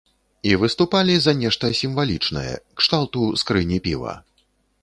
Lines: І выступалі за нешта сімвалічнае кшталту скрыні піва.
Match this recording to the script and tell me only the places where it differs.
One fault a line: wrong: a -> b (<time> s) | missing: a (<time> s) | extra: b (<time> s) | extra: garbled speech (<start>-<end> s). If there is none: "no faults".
no faults